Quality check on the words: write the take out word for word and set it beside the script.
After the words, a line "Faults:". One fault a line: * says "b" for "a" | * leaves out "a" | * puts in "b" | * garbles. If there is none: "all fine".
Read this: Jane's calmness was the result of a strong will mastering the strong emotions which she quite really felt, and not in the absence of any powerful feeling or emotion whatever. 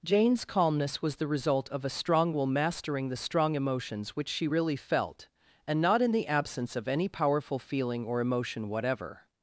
Jane's calmness was the result of a strong will mastering the strong emotions which she really felt, and not in the absence of any powerful feeling or emotion whatever.
Faults:
* leaves out "quite"